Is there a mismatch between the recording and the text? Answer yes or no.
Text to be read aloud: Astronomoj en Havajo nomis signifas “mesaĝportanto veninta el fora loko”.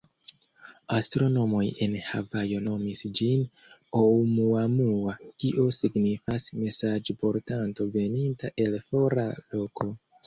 yes